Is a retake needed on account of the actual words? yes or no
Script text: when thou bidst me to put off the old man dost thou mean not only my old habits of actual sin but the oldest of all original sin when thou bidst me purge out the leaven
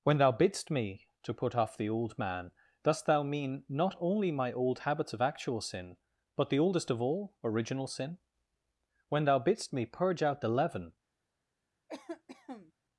no